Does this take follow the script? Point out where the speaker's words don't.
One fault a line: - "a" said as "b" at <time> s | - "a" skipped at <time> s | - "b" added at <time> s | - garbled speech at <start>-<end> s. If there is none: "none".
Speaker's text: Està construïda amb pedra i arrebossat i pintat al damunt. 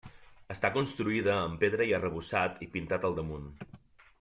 none